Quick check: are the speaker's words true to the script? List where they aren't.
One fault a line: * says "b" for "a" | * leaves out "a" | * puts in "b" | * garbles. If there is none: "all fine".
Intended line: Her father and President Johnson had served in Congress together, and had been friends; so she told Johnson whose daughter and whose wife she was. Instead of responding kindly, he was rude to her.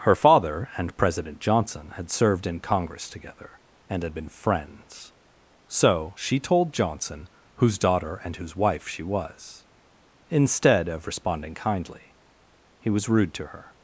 all fine